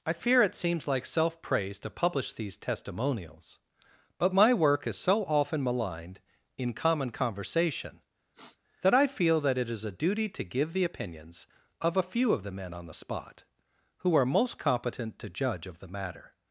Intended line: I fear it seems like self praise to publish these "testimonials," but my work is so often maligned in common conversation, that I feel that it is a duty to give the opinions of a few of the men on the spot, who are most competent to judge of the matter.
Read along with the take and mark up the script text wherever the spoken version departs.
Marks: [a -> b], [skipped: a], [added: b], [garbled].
I fear it seems like self praise to publish these "testimonials," but my work is so often maligned in common conversation, that I feel that it is a duty to give the opinions of a few of the men on the spot, who are most competent to judge of the matter.